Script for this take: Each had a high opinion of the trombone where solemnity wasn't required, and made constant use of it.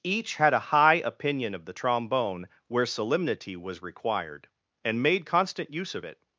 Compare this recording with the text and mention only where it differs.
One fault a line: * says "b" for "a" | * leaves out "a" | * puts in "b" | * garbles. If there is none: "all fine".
* says "was" for "wasn't"